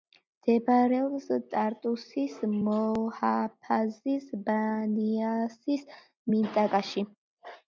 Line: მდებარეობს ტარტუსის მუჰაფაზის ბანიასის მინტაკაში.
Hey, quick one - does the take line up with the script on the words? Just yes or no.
yes